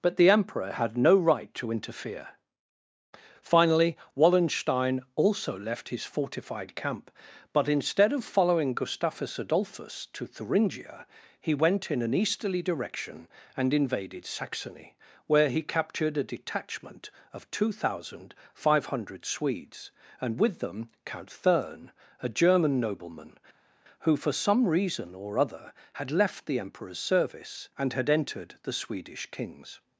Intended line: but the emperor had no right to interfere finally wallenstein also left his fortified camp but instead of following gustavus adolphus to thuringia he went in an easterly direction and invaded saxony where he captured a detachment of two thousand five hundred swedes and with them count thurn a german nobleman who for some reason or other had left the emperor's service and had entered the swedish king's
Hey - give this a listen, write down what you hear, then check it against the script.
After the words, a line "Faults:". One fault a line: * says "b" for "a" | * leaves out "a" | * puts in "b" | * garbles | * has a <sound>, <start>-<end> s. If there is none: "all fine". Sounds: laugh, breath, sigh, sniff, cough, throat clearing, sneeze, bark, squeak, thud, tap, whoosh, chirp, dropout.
but the emperor had no right to interfere finally wallenstein also left his fortified camp but instead of following gustavus adolphus to thuringia he went in an easterly direction and invaded saxony where he captured a detachment of two thousand five hundred swedes and with them count thurn a german nobleman who for some reason or other had left the emperor's service and had entered the swedish king's
Faults:
all fine